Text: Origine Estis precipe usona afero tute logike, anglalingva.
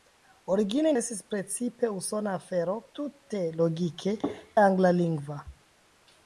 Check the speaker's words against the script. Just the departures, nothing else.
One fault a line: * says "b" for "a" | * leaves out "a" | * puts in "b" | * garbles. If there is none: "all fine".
all fine